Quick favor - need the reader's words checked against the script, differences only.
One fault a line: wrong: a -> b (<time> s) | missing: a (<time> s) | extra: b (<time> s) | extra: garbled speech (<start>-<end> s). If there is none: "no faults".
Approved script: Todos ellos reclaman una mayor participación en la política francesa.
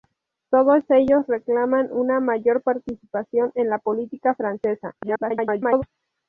extra: garbled speech (5.0-5.8 s)